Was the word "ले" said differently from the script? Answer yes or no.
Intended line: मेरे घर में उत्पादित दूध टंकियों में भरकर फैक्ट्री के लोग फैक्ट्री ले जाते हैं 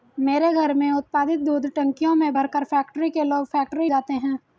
yes